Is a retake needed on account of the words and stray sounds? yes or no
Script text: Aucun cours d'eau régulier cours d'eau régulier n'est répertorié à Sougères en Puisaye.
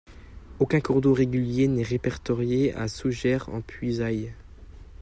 yes